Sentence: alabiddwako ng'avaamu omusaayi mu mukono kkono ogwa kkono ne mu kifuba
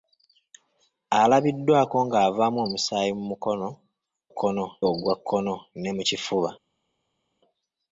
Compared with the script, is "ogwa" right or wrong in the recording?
right